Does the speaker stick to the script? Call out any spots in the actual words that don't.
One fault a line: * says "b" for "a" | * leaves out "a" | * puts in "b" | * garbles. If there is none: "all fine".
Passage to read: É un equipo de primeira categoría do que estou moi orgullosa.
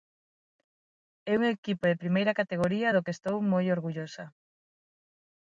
all fine